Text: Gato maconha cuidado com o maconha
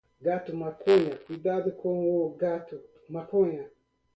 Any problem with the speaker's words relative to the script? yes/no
yes